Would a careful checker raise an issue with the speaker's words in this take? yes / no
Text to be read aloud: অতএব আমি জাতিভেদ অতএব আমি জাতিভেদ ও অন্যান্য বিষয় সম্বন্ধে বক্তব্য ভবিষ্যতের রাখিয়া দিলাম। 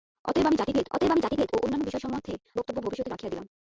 no